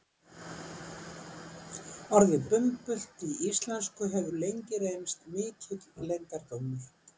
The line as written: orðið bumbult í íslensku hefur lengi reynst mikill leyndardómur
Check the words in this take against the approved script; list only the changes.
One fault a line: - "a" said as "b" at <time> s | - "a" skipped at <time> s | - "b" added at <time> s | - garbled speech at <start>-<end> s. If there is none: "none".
none